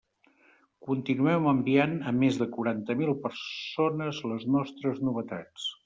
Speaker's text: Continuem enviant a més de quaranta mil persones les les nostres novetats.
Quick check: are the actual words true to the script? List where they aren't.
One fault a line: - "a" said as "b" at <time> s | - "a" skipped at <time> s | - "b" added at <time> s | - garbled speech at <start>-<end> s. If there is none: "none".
- "les" skipped at 4.5 s